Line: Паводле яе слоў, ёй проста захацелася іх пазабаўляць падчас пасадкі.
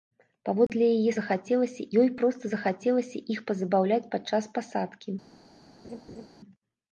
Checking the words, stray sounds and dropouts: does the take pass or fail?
fail